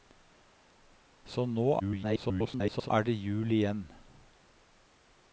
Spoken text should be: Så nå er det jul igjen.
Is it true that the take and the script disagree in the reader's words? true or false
true